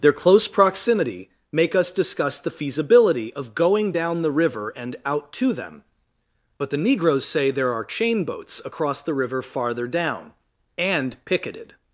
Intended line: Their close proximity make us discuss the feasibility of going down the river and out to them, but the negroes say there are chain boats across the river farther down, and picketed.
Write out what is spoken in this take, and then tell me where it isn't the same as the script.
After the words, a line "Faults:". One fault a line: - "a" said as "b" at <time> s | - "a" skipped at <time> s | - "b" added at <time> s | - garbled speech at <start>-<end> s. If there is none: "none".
Their close proximity make us discuss the feasibility of going down the river and out to them, but the negroes say there are chain boats across the river farther down, and picketed.
Faults:
none